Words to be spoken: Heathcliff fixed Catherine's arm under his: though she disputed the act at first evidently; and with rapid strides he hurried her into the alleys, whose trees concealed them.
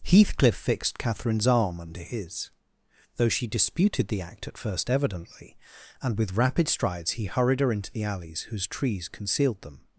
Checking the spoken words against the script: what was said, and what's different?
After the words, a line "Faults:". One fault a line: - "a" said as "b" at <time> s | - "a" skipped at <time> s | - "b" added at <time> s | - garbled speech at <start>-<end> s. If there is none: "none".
Heathcliff fixed Catherine's arm under his: though she disputed the act at first evidently; and with rapid strides he hurried her into the alleys, whose trees concealed them.
Faults:
none